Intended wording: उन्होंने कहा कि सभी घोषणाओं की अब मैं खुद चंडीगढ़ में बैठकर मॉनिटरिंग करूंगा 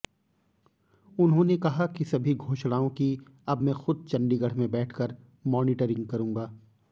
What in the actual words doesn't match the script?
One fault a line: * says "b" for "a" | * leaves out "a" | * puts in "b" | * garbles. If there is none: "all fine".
all fine